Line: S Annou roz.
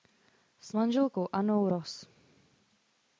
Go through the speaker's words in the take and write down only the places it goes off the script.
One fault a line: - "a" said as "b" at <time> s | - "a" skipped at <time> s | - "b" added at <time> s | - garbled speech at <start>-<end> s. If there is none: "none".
- "manželkou" added at 0.7 s